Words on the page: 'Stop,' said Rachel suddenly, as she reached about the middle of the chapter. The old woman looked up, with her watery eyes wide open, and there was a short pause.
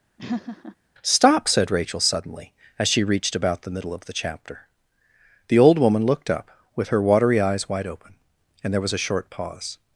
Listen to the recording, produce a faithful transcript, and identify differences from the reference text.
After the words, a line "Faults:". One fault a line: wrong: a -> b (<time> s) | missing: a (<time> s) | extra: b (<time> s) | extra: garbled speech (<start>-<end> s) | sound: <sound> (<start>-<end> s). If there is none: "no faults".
'Stop,' said Rachel suddenly, as she reached about the middle of the chapter. The old woman looked up, with her watery eyes wide open, and there was a short pause.
Faults:
sound: laugh (0.2-0.8 s)